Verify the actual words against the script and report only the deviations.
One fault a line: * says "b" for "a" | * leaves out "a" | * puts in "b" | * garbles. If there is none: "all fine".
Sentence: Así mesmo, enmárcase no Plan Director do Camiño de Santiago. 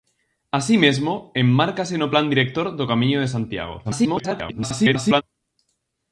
* garbles